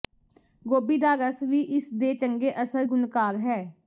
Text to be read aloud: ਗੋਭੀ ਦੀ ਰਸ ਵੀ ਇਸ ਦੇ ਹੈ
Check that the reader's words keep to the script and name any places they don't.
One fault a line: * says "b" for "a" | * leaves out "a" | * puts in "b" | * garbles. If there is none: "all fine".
* says "ਦਾ" for "ਦੀ"
* puts in "ਚੰਗੇ ਅਸਰ ਗੁਣਕਾਰ"